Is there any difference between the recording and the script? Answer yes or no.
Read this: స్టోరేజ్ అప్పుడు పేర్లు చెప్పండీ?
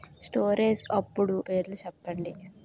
no